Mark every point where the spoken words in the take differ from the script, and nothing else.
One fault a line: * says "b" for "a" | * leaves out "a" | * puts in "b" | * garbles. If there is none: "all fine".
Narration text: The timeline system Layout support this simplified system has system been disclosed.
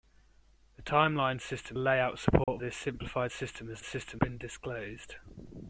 all fine